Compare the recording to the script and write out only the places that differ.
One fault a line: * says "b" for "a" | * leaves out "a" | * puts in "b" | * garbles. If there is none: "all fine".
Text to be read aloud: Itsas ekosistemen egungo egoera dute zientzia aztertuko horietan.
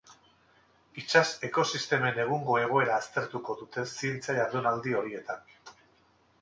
* puts in "aztertuko"
* says "jardunaldi" for "aztertuko"